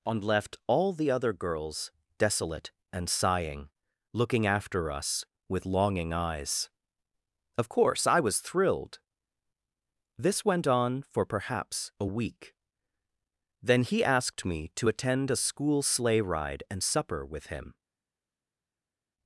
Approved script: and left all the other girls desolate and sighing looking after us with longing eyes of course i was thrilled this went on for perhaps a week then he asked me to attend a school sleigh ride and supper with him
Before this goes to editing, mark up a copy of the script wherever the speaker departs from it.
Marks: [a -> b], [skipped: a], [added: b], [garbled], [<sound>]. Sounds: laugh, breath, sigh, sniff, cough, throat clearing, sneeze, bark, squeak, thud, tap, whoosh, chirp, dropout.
and left all the other girls desolate and sighing looking after us with longing eyes of course i was thrilled this went on for perhaps a week then he asked me to attend a school sleigh ride and supper with him